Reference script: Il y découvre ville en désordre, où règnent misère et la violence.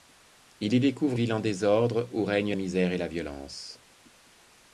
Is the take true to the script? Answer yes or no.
yes